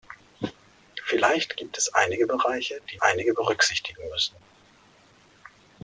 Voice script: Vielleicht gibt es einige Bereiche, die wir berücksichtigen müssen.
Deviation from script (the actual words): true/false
true